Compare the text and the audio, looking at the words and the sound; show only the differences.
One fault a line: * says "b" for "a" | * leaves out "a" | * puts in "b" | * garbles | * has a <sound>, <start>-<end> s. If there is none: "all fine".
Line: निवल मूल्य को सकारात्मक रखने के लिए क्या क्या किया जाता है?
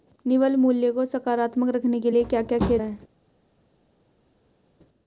* leaves out "जाता"